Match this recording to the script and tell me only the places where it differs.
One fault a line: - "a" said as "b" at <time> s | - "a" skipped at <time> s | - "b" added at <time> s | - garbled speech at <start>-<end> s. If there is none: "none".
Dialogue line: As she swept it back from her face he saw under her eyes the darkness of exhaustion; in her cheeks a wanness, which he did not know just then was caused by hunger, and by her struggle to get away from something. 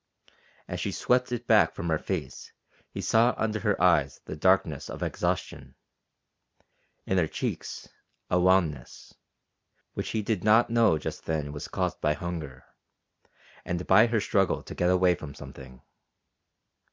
none